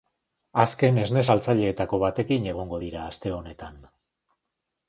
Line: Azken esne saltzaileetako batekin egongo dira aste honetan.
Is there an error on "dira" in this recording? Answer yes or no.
no